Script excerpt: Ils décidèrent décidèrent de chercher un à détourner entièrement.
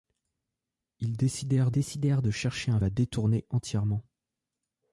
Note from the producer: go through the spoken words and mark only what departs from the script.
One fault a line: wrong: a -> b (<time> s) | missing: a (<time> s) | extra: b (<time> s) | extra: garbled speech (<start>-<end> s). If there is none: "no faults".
no faults